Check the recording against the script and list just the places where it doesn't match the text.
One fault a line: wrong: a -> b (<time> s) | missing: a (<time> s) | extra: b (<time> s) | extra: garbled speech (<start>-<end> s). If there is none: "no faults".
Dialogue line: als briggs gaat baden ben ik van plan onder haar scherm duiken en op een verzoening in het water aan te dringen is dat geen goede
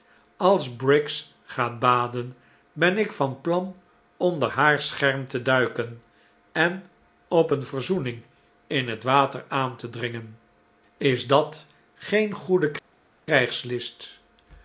extra: te (5.3 s)